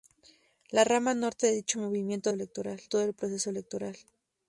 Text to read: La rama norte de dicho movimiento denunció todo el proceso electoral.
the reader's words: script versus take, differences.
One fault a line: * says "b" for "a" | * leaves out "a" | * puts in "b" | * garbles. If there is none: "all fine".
* says "electoral" for "denunció"